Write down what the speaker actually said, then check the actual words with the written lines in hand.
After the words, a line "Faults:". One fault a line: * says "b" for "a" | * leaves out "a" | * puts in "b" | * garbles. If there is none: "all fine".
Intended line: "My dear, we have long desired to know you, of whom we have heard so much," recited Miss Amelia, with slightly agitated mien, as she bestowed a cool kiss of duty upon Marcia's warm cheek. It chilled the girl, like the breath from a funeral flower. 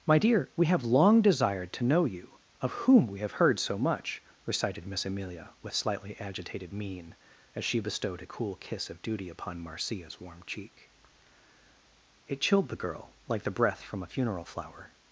"My dear, we have long desired to know you, of whom we have heard so much," recited Miss Amelia, with slightly agitated mien, as she bestowed a cool kiss of duty upon Marcia's warm cheek. It chilled the girl, like the breath from a funeral flower.
Faults:
all fine